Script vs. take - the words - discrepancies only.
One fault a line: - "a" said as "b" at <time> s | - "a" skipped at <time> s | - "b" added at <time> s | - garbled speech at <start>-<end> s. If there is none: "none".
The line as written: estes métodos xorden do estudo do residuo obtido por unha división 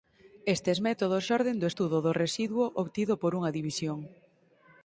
none